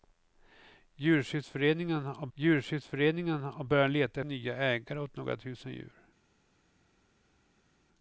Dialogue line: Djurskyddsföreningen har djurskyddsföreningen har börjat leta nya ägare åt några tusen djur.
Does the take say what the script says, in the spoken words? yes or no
yes